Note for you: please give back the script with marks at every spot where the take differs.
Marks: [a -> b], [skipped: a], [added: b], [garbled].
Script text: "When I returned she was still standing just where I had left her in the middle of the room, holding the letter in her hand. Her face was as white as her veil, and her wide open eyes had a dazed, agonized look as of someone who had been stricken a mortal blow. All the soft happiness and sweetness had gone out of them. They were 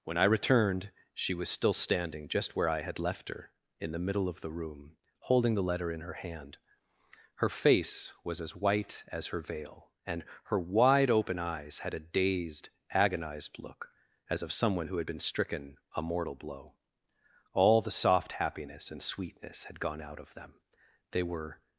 "When I returned she was still standing just where I had left her in the middle of the room, holding the letter in her hand. Her face was as white as her veil, and her wide open eyes had a dazed, agonized look as of someone who had been stricken a mortal blow. All the soft happiness and sweetness had gone out of them. They were